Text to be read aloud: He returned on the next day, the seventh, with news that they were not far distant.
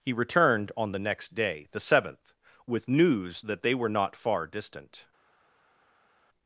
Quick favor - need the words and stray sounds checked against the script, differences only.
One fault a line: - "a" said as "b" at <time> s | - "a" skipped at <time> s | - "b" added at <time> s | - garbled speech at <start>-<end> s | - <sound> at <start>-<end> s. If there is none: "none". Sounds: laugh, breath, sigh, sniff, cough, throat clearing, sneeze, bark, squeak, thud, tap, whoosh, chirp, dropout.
none